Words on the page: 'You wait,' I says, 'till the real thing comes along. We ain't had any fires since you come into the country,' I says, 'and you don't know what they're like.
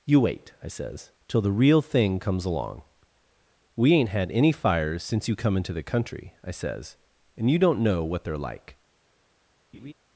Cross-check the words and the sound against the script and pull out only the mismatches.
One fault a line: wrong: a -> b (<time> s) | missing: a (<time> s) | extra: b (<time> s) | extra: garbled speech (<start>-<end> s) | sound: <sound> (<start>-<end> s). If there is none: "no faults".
sound: laugh (9.7-9.9 s)